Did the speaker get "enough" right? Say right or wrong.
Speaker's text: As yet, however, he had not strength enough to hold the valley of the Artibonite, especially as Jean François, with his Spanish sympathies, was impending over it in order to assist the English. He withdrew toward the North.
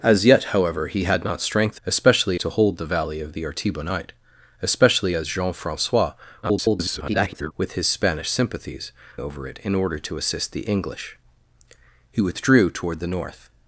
wrong